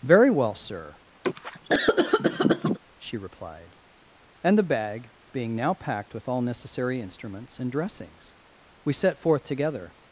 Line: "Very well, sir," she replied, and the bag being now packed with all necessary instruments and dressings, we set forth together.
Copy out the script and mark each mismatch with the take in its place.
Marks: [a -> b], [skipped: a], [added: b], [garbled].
"Very well, sir," she replied, and the bag being now packed with all necessary instruments and dressings, we set forth together.